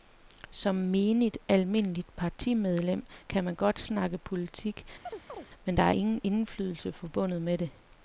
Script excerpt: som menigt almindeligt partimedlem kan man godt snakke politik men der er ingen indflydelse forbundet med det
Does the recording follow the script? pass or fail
pass